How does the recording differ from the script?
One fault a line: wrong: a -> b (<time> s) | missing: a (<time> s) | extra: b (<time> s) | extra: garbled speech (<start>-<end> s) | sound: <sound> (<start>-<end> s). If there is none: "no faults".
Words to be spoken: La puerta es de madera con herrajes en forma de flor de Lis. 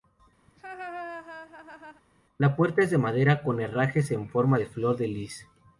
sound: laugh (0.5-2.0 s)